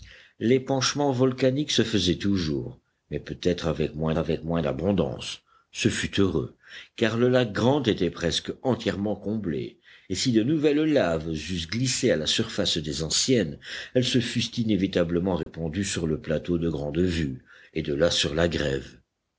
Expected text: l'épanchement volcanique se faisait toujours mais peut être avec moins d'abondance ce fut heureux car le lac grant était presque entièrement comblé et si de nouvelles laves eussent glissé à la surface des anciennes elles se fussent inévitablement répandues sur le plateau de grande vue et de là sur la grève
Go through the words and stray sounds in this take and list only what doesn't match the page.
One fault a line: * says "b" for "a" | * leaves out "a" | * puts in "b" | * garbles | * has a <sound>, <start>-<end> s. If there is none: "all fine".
* puts in "avec moins"
* has a dropout, 15.4-15.5 s